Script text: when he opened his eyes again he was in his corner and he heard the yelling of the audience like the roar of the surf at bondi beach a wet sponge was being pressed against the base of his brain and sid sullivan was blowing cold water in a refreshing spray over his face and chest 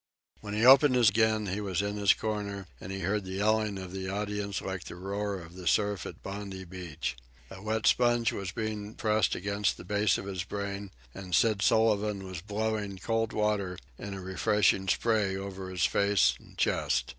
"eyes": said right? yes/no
no